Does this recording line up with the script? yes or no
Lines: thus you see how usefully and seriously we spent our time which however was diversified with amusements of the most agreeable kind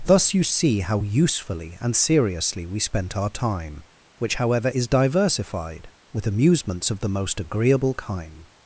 no